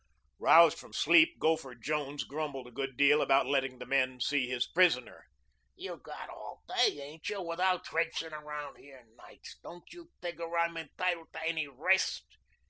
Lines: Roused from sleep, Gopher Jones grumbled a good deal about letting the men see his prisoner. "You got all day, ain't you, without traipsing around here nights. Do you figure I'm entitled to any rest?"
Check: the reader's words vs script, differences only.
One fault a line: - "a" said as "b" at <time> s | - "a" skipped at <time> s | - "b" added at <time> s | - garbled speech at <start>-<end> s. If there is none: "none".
- "Do" said as "Don't" at 9.6 s